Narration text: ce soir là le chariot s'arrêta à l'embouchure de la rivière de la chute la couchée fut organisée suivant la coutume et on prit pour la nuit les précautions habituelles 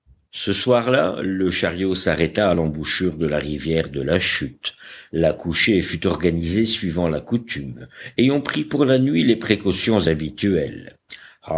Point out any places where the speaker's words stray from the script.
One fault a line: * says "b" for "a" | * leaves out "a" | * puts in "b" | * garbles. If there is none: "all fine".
all fine